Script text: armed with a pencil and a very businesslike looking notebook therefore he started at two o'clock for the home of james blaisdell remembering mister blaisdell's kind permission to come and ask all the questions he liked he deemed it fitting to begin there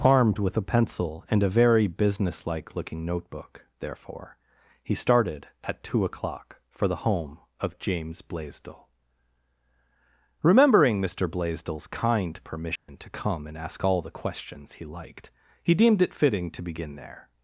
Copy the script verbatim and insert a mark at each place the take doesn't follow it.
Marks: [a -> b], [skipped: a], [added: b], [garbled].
armed with a pencil and a very businesslike looking notebook therefore he started at two o'clock for the home of james blaisdell remembering mister blaisdell's kind permission to come and ask all the questions he liked he deemed it fitting to begin there